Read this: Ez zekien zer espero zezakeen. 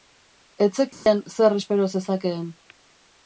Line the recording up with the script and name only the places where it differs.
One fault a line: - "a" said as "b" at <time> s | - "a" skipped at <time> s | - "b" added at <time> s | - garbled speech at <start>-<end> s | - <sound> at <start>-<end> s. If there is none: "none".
- dropout at 0.9-1.1 s